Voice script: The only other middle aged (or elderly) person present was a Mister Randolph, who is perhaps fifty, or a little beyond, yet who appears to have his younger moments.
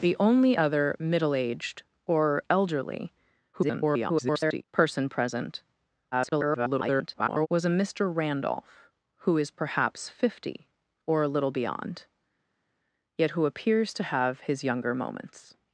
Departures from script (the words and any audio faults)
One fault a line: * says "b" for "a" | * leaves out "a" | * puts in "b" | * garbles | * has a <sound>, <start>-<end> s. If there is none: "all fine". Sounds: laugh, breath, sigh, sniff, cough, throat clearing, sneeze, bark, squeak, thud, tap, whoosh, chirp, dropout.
* garbles
* garbles